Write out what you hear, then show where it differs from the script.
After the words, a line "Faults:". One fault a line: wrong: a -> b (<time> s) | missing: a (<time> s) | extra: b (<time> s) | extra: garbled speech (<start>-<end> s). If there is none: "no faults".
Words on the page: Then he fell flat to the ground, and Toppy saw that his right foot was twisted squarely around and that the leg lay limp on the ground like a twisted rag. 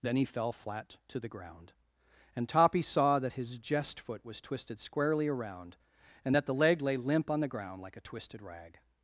Then he fell flat to the ground, and Toppy saw that his jest foot was twisted squarely around and that the leg lay limp on the ground like a twisted rag.
Faults:
wrong: right -> jest (3.6 s)